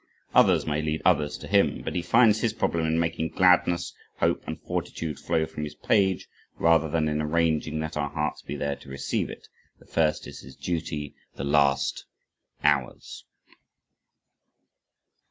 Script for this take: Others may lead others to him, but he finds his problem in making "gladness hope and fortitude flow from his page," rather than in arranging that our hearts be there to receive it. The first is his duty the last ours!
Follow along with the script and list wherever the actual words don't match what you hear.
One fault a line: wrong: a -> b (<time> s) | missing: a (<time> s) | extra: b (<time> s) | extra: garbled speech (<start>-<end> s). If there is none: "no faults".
no faults